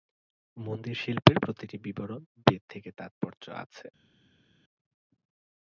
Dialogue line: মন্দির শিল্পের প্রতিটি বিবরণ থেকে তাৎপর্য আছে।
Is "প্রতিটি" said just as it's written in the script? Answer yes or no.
yes